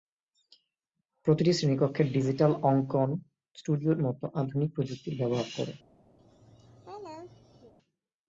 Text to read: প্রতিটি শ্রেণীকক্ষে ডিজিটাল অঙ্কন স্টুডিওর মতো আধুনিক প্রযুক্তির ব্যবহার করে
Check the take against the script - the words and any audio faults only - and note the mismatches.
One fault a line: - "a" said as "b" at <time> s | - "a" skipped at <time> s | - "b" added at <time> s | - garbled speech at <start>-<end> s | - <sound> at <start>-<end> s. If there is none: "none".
- laugh at 6.2-7.7 s